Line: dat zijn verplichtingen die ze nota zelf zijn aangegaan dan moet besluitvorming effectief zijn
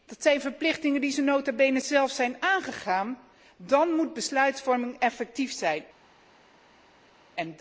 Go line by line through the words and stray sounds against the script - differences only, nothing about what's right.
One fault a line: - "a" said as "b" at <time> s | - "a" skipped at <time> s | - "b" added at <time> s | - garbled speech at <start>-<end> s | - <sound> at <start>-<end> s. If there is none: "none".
- "bene" added at 1.5 s